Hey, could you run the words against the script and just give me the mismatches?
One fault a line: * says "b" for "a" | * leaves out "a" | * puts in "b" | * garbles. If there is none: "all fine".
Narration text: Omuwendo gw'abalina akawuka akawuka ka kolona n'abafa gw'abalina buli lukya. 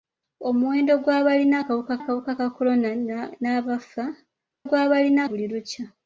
all fine